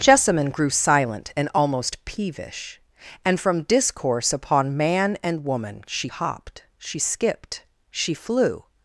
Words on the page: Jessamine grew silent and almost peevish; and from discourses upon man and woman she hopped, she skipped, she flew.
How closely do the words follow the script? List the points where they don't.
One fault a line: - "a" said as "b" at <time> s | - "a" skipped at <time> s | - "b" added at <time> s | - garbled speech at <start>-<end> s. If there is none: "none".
- "discourses" said as "discourse" at 3.6 s